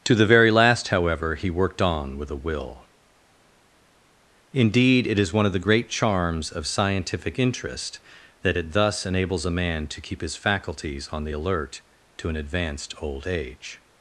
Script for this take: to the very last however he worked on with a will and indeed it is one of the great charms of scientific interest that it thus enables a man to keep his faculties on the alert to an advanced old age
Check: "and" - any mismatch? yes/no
yes